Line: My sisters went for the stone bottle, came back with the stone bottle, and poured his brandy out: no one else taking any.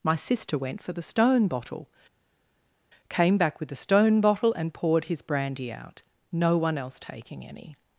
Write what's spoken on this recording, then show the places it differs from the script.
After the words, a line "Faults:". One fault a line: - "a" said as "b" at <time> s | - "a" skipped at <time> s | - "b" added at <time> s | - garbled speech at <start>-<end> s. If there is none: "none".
My sister went for the stone bottle, came back with the stone bottle, and poured his brandy out: no one else taking any.
Faults:
- "sisters" said as "sister" at 0.1 s